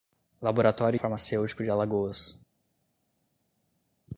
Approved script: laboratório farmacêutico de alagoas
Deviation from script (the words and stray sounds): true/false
false